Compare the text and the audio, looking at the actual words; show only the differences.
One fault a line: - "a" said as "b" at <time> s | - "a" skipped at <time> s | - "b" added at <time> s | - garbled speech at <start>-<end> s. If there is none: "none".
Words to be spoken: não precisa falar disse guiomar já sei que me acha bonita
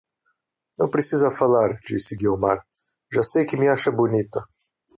none